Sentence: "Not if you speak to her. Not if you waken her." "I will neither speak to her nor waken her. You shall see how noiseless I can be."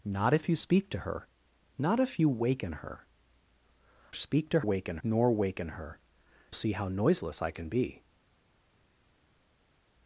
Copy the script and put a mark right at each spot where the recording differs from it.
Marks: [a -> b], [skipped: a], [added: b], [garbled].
"Not if you speak to her. Not if you waken her." [skipped: "I will neither] speak to [her -> waken] nor waken her. [skipped: You shall] see how noiseless I can be."